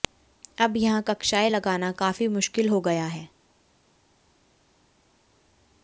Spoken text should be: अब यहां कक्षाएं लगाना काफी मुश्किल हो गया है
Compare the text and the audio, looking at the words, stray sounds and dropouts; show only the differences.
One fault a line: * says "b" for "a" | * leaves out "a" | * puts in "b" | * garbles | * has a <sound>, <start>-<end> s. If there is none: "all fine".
all fine